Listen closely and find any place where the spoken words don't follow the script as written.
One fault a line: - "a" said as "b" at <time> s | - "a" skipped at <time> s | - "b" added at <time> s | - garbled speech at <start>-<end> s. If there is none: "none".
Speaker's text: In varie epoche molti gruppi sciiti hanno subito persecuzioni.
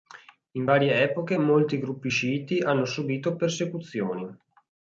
none